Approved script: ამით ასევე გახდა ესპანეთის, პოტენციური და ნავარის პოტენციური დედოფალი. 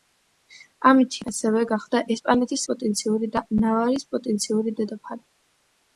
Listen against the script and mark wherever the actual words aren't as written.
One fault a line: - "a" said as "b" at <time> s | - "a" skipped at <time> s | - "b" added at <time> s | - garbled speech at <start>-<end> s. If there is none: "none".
none